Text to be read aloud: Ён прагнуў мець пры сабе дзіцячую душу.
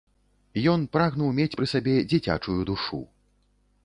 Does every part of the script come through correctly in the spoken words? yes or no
yes